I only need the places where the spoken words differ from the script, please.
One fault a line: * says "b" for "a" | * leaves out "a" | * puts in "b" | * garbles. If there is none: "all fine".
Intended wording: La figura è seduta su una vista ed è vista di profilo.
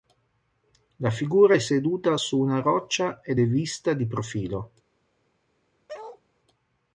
* says "roccia" for "vista"